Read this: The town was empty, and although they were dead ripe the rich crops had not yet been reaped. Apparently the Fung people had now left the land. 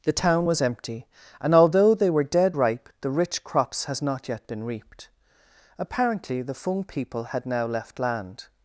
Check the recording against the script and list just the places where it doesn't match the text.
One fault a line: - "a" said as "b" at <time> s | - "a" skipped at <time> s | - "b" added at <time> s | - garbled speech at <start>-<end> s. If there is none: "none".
- "had" said as "has" at 3.9 s
- "the" skipped at 8.0 s